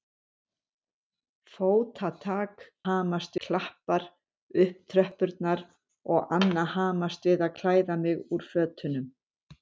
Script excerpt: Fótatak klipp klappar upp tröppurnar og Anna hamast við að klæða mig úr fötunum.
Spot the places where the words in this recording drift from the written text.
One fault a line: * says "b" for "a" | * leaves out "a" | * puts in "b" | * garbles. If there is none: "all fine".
* says "hamast" for "klipp"